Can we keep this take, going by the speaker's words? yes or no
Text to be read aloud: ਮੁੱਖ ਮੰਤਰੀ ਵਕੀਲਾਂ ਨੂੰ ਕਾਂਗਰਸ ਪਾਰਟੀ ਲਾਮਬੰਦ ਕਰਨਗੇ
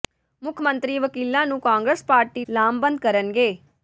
yes